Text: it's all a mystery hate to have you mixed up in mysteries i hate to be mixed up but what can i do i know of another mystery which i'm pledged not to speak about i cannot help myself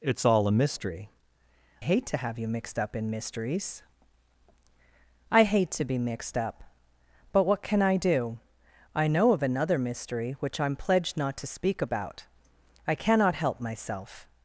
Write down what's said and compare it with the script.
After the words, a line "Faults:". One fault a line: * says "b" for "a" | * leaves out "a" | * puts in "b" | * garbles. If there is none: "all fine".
it's all a mystery hate to have you mixed up in mysteries i hate to be mixed up but what can i do i know of another mystery which i'm pledged not to speak about i cannot help myself
Faults:
all fine